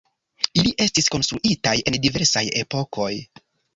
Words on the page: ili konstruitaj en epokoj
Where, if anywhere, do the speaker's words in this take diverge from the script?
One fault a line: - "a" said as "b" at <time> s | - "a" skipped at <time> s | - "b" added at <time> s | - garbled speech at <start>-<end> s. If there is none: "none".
- "estis" added at 0.8 s
- "diversaj" added at 2.1 s